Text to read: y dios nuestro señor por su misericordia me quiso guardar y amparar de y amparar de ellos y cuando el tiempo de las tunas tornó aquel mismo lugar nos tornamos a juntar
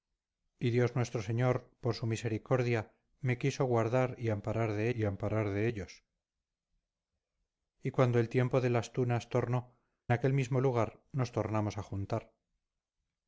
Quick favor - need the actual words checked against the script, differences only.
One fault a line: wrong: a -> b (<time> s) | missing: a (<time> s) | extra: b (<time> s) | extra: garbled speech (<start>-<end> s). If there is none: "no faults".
no faults